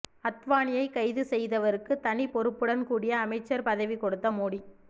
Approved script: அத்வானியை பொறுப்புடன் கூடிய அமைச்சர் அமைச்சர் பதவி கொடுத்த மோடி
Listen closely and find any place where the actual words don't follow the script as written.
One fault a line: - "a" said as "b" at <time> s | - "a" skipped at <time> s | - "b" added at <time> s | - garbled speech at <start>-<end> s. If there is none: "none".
- "கைது செய்தவருக்கு தனி" added at 0.9 s
- "அமைச்சர்" skipped at 3.7 s